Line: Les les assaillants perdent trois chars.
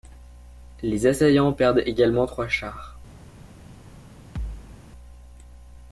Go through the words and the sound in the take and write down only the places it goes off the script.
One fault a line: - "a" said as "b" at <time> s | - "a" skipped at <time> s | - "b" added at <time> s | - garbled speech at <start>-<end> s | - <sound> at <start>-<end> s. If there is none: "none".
- "les" skipped at 1.1 s
- "également" added at 1.8 s
- thud at 4.4-4.8 s